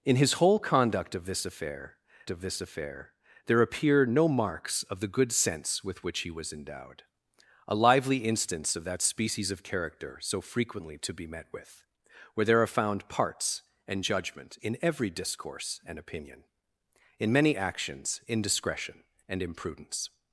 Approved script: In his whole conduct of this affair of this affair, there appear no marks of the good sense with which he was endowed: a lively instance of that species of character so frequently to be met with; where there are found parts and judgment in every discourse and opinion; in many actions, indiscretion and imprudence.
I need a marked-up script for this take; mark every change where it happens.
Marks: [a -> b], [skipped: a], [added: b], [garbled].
In his whole conduct of this affair of this affair, there appear no marks of the good sense with which he was endowed: a lively instance of that species of character so frequently to be met with; where there are found parts and judgment in every discourse and opinion; in many actions, indiscretion and imprudence.